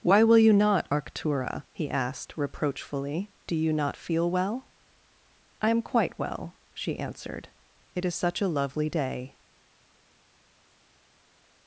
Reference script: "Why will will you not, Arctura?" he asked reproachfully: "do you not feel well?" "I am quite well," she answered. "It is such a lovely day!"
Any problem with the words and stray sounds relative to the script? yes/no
yes